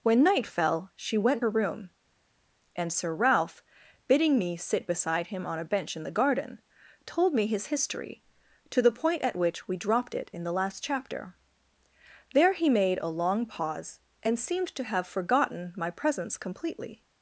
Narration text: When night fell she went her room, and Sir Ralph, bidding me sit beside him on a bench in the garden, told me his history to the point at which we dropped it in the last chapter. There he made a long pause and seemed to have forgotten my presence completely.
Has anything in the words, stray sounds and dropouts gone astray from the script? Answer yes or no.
no